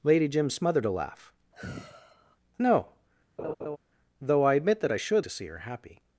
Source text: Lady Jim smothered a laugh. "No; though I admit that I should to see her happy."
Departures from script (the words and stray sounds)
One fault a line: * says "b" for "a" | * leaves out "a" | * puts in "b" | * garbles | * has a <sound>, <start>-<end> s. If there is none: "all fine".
* has a sigh, 1.5-2.4 s
* has a laugh, 3.4-3.8 s